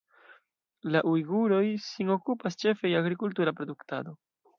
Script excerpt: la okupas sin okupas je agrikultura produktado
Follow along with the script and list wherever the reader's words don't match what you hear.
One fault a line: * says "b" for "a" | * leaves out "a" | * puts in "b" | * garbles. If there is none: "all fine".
* says "ujguroj" for "okupas"
* puts in "ĉefe"